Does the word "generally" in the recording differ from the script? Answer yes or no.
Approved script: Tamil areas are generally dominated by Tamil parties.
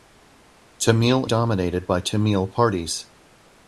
yes